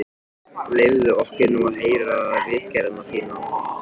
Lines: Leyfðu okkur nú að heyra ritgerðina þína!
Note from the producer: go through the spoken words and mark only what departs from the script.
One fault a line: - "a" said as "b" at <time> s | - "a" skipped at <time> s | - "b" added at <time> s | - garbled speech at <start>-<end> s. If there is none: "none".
none